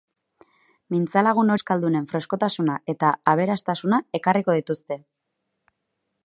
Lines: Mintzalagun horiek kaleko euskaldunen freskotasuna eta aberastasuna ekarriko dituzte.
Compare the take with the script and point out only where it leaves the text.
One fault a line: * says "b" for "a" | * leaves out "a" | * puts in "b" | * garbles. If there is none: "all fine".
* leaves out "horiek kaleko"